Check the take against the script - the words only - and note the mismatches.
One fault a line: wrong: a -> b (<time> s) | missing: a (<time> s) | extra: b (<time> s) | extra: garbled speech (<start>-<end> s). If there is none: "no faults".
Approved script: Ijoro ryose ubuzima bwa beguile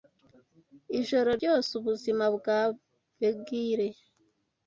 no faults